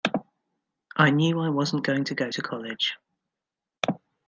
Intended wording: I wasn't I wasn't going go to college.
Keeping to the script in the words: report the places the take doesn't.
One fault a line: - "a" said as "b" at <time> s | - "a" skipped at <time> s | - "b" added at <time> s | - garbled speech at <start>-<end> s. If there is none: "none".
- "wasn't" said as "knew" at 1.1 s
- "to" added at 2.0 s